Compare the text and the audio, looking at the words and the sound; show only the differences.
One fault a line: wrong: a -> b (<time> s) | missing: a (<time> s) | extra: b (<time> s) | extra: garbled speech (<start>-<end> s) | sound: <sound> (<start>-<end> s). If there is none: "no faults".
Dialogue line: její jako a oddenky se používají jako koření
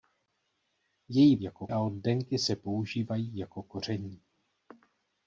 no faults